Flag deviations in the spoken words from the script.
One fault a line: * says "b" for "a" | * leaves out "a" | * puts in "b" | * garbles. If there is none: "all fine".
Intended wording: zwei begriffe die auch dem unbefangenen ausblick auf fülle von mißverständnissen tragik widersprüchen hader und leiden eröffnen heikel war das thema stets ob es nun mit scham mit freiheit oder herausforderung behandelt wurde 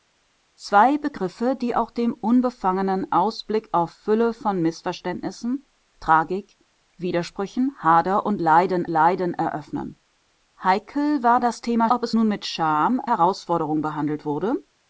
* puts in "leiden"
* leaves out "stets"
* leaves out "mit freiheit oder"